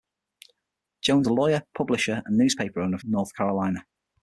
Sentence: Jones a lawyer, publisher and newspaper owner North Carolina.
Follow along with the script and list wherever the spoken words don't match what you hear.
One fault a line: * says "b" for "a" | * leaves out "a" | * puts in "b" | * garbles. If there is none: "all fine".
all fine